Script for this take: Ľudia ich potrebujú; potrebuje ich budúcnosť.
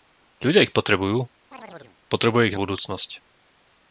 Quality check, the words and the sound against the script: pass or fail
fail